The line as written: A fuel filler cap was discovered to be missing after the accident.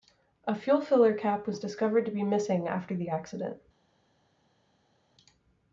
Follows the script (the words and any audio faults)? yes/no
yes